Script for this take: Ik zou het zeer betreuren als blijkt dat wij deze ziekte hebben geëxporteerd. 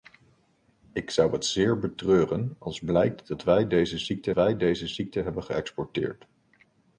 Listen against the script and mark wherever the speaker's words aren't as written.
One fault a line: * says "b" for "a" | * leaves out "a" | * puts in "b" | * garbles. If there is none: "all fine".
* puts in "wij deze ziekte"